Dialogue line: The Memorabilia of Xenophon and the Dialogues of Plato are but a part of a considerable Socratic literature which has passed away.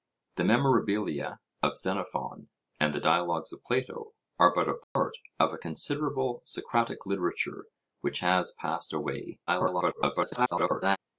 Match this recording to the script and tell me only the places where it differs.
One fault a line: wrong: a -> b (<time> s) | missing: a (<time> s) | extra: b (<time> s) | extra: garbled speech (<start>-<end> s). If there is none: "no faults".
extra: garbled speech (9.5-11.0 s)